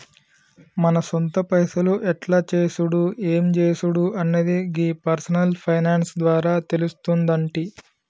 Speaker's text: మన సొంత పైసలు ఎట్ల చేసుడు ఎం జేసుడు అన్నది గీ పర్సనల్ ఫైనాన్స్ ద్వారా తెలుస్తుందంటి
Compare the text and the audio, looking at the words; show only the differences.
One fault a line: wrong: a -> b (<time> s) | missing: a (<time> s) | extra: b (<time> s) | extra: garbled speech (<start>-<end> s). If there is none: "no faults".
no faults